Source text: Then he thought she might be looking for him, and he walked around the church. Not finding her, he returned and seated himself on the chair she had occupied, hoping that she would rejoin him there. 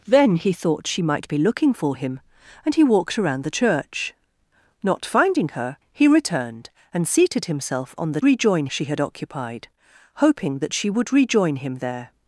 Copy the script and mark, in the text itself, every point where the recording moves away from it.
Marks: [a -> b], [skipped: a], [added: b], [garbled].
Then he thought she might be looking for him, and he walked around the church. Not finding her, he returned and seated himself on the [chair -> rejoin] she had occupied, hoping that she would rejoin him there.